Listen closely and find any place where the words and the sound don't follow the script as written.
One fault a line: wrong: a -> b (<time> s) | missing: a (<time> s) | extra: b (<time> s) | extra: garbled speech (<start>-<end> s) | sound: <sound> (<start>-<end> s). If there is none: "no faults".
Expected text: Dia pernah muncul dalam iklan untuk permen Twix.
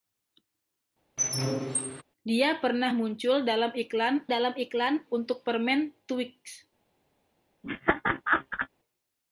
sound: squeak (1.2-2.0 s)
extra: dalam iklan (4.3 s)
sound: laugh (7.6-8.7 s)